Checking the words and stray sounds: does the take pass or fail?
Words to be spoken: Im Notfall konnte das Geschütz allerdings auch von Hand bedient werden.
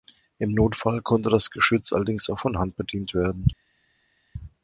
pass